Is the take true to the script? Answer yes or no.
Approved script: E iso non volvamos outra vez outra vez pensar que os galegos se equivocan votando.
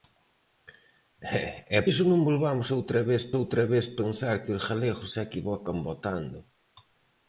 yes